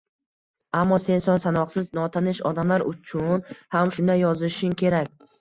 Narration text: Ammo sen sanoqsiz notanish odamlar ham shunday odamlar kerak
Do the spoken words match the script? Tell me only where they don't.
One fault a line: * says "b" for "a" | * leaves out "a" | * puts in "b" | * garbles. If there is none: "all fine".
* puts in "son"
* puts in "uchun"
* says "yozishing" for "odamlar"